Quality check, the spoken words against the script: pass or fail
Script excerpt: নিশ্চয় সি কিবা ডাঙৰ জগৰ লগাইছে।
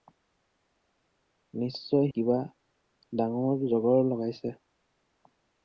fail